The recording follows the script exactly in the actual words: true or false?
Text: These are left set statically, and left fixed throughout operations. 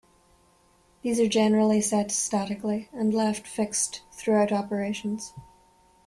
false